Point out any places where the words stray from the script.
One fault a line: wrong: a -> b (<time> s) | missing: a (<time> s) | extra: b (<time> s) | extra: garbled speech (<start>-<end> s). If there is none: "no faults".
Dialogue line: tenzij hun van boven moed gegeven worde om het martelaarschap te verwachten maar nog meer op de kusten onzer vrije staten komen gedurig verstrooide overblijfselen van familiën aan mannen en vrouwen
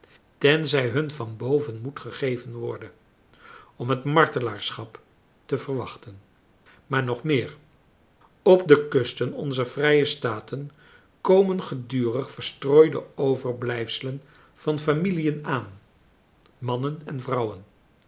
no faults